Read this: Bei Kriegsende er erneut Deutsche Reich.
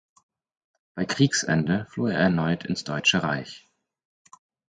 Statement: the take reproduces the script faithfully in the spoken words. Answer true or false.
false